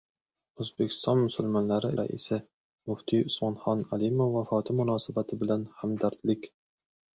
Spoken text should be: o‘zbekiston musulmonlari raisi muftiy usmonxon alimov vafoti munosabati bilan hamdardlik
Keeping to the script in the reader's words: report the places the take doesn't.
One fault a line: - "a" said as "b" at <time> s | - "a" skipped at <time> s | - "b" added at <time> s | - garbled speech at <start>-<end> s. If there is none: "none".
none